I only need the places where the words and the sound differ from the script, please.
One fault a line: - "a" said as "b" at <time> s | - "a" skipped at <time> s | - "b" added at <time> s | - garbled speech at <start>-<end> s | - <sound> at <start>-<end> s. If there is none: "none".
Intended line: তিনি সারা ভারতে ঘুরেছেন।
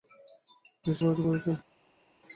- "সারা" skipped at 0.9 s